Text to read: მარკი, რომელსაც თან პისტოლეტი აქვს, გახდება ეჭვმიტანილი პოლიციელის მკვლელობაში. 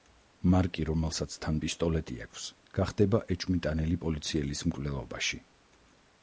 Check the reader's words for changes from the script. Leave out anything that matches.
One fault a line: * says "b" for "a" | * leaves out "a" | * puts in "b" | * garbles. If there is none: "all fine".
all fine